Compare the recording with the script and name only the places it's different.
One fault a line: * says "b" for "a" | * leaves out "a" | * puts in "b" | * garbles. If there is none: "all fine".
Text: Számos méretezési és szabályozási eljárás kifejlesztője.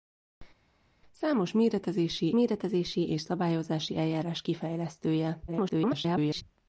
* puts in "méretezési"
* garbles